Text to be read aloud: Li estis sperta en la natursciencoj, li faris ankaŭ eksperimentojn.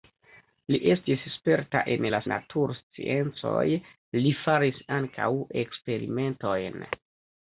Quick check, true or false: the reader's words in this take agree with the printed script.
true